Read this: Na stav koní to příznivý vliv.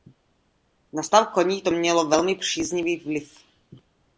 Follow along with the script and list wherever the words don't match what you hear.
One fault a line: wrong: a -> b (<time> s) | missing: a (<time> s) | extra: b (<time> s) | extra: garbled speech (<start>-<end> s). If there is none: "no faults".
extra: mělo velmi (1.7 s)